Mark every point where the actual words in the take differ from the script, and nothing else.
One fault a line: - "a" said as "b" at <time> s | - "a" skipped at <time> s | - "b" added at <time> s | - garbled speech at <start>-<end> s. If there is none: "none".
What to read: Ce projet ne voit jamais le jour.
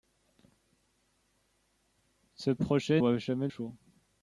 - "ne" skipped at 3.0 s
- "le" skipped at 3.5 s